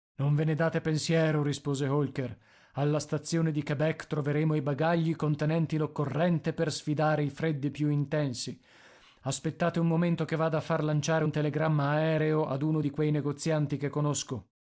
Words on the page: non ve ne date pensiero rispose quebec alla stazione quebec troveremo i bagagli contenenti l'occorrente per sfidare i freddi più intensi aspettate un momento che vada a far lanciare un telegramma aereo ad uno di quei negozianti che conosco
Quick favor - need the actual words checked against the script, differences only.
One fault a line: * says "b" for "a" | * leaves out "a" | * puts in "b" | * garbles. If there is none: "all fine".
* says "holker" for "quebec"
* puts in "di"